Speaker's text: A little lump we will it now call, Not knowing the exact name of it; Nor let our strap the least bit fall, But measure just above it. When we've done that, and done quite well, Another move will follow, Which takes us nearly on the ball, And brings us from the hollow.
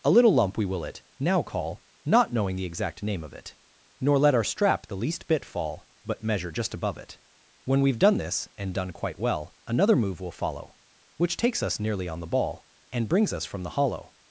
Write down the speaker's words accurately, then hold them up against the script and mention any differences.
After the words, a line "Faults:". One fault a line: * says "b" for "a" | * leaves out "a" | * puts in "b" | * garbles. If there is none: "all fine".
A little lump we will it now call, Not knowing the exact name of it; Nor let our strap the least bit fall, But measure just above it. When we've done this, and done quite well, Another move will follow, Which takes us nearly on the ball, And brings us from the hollow.
Faults:
* says "this" for "that"